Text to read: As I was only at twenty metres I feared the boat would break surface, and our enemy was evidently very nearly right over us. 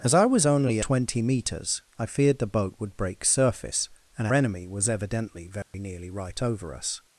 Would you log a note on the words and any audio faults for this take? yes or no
yes